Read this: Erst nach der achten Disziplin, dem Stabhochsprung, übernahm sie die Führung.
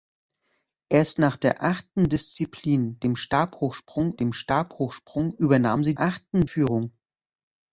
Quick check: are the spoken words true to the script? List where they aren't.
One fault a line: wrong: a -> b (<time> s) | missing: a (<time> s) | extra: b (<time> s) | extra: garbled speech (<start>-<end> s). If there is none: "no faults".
extra: dem Stabhochsprung (4.2 s)
wrong: die -> achten (6.0 s)